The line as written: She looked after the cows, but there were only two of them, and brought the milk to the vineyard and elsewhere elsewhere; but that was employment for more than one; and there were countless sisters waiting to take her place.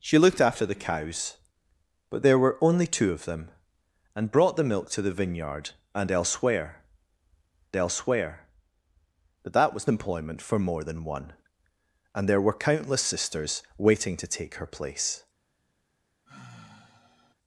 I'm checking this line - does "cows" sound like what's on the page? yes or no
yes